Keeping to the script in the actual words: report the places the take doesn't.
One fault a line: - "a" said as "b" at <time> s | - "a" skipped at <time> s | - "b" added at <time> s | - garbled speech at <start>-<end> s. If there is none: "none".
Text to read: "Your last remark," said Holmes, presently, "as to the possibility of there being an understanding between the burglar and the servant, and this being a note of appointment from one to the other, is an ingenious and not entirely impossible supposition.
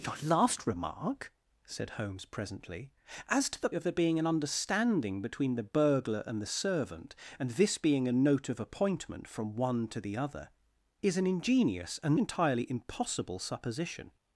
- "possibility" skipped at 3.7 s
- "not" skipped at 12.1 s